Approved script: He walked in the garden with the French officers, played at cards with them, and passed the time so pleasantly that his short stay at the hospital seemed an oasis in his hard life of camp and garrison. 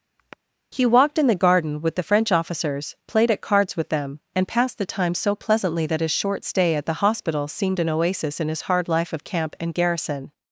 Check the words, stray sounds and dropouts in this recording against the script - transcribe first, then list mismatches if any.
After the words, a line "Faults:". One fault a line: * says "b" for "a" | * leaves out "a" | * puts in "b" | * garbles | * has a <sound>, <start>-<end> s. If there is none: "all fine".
He walked in the garden with the French officers, played at cards with them, and passed the time so pleasantly that his short stay at the hospital seemed an oasis in his hard life of camp and garrison.
Faults:
* has a sigh, 0.2-0.4 s